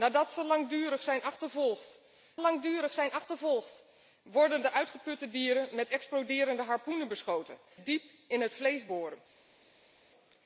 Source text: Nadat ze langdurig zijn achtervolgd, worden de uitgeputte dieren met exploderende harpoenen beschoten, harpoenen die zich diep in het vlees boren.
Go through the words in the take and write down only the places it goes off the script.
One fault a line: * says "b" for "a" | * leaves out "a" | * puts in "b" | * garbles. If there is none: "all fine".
* puts in "langdurig zijn achtervolgd"
* leaves out "harpoenen die zich"